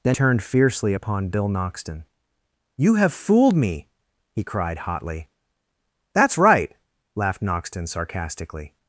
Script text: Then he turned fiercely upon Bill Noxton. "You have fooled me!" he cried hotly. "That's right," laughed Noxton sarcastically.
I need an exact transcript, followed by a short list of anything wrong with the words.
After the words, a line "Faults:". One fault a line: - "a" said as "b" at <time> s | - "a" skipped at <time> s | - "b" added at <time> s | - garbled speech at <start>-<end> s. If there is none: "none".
Then turned fiercely upon Bill Noxton. "You have fooled me!" he cried hotly. "That's right," laughed Noxton sarcastically.
Faults:
- "he" skipped at 0.2 s